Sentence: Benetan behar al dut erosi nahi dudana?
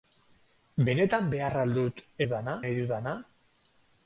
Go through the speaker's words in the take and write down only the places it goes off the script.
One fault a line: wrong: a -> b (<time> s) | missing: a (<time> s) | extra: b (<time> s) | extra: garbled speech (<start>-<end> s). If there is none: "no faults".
wrong: erosi -> dudana (2.2 s)